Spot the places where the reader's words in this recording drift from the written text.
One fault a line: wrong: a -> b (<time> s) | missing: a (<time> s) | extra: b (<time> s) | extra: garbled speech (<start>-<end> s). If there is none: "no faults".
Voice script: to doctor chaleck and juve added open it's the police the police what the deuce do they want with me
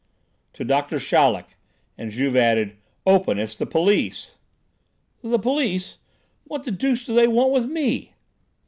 no faults